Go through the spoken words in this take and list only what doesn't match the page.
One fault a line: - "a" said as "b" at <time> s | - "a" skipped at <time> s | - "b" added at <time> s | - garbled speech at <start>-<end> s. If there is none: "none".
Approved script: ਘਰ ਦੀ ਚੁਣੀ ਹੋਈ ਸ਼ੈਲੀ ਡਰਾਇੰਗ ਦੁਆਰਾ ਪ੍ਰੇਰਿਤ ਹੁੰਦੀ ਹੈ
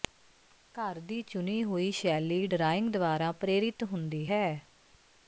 none